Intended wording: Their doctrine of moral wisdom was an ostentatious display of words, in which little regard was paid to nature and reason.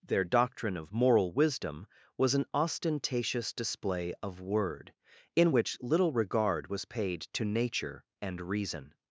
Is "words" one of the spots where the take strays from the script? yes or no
yes